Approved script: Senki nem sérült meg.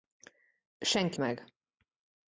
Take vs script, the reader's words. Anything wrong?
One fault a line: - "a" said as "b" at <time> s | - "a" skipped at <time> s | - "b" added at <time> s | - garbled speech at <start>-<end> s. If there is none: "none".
- "nem sérült" skipped at 1.2 s